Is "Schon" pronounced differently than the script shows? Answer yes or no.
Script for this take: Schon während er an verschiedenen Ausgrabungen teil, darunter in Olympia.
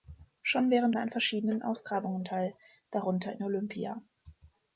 no